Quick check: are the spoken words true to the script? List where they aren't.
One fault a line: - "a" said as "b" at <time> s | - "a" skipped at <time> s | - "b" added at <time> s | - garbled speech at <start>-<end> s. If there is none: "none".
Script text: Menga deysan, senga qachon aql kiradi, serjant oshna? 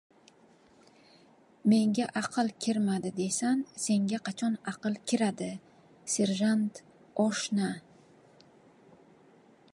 - "aql kirmadi" added at 2.2 s